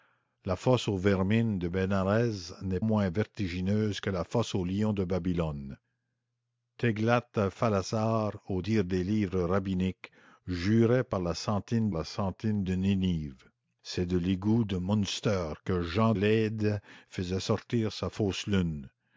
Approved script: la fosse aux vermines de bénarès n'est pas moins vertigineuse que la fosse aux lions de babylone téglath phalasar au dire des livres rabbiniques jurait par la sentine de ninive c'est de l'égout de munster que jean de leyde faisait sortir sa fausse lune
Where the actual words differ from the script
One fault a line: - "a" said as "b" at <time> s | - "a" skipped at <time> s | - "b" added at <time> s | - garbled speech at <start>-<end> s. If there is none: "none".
- "pas" skipped at 2.8 s
- "la sentine" added at 11.9 s
- "de" skipped at 16.1 s